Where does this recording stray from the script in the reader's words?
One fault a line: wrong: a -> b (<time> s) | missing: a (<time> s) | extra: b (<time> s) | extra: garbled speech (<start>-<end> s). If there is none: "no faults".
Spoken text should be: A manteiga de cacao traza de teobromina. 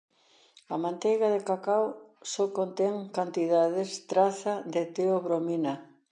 extra: só contén cantidades (2.3 s)